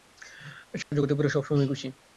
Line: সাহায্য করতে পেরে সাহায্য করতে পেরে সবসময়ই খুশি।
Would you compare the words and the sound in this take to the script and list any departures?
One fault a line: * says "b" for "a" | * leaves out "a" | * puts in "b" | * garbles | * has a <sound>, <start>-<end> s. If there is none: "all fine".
* has a dropout, 0.8-0.9 s
* leaves out "সাহায্য করতে পেরে"